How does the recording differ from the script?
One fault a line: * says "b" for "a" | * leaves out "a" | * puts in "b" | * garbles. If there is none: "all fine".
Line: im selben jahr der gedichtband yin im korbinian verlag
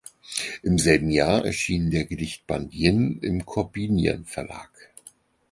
* puts in "erschien"